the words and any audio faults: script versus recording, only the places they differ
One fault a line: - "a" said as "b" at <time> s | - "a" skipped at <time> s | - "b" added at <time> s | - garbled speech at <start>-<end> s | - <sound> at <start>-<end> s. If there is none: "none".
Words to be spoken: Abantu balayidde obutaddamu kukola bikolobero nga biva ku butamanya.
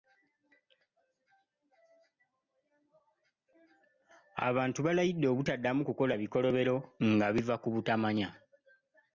none